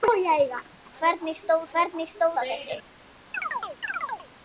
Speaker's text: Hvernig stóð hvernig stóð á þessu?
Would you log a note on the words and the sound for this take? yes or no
yes